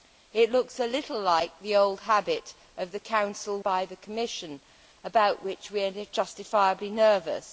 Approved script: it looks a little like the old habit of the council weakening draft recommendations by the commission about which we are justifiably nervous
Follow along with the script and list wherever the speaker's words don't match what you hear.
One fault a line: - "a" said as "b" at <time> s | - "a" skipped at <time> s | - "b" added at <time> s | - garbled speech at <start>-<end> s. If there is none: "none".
- "weakening draft recommendations" skipped at 3.6 s